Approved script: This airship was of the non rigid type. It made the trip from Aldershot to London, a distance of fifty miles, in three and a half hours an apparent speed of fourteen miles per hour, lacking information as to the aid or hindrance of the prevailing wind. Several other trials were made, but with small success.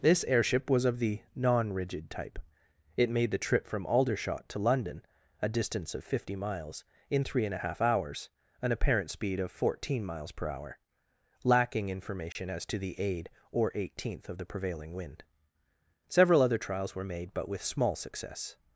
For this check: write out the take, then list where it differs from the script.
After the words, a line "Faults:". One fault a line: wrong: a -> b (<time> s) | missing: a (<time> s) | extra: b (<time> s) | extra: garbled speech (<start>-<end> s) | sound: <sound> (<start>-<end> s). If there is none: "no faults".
This airship was of the non rigid type. It made the trip from Aldershot to London, a distance of fifty miles, in three and a half hours an apparent speed of fourteen miles per hour, lacking information as to the aid or eighteenth of the prevailing wind. Several other trials were made, but with small success.
Faults:
sound: dropout (12.3-12.4 s)
wrong: hindrance -> eighteenth (13.7 s)